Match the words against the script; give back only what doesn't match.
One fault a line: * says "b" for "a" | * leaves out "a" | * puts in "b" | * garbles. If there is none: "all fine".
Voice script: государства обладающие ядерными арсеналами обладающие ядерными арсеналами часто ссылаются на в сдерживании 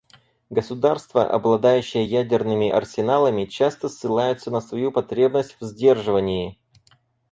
* leaves out "обладающие ядерными арсеналами"
* puts in "свою потребность"